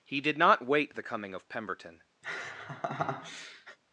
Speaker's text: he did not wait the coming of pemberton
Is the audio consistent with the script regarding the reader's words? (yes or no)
yes